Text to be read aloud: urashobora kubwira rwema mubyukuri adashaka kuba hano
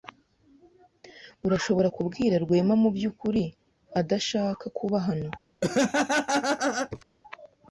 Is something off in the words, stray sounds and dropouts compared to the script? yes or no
yes